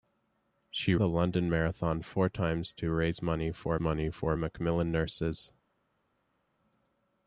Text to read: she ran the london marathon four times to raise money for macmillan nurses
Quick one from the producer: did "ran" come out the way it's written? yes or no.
no